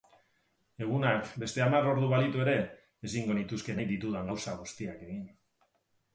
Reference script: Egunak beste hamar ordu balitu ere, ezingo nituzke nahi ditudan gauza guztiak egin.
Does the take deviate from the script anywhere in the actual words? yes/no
no